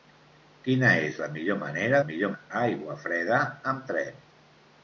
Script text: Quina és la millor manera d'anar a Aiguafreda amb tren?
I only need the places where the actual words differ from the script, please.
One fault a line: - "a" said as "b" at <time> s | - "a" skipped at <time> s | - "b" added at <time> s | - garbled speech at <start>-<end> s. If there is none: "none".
- "d'anar" said as "millor" at 2.1 s